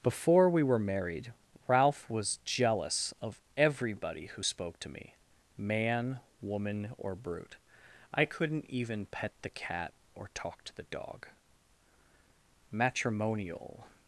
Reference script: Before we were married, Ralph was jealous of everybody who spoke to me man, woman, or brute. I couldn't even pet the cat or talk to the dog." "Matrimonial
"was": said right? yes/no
yes